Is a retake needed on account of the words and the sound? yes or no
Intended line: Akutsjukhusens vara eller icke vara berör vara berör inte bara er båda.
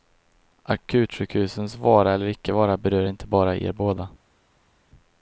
yes